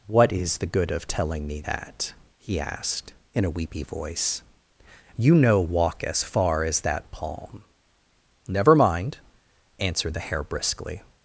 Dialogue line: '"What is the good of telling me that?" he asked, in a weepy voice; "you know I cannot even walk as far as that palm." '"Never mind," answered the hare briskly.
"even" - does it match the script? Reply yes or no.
no